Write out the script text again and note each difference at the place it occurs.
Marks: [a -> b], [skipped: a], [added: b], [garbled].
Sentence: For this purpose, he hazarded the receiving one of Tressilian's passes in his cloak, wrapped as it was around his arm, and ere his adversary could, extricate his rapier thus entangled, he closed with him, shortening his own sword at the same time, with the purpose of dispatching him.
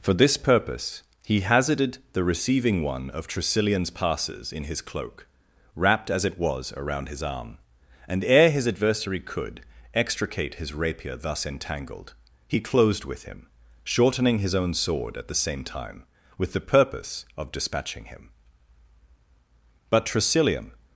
For this purpose, he hazarded the receiving one of Tressilian's passes in his cloak, wrapped as it was around his arm, and ere his adversary could, extricate his rapier thus entangled, he closed with him, shortening his own sword at the same time, with the purpose of dispatching him. [added: But Tressilian]